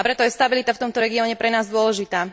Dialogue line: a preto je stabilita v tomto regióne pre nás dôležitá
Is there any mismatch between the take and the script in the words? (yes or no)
no